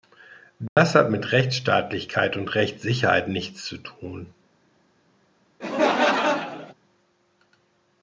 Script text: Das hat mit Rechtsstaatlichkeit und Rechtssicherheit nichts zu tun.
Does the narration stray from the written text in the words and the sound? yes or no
yes